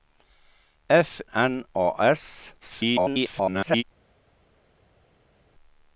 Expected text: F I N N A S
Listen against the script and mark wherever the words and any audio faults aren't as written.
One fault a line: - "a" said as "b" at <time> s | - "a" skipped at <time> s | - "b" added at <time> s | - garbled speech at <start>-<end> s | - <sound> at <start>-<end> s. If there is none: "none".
- "I N" skipped at 1.2 s
- garbled speech at 2.6-3.8 s